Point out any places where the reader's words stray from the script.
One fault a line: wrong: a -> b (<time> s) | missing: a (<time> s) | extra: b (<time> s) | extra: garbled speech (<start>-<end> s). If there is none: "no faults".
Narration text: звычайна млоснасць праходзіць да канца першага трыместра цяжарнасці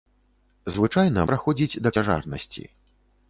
missing: млоснасць (1.2 s)
missing: канца першага трыместра (1.9 s)